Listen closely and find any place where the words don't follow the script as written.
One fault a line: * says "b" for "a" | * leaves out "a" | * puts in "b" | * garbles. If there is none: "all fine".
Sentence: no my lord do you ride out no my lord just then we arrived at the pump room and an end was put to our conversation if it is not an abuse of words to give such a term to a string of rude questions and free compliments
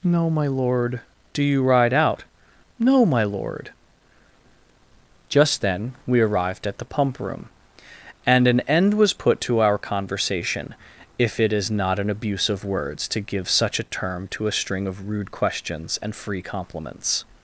all fine